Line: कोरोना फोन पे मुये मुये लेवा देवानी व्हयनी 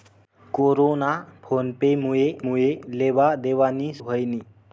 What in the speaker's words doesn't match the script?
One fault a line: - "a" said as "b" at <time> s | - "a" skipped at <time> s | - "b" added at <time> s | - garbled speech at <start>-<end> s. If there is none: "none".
none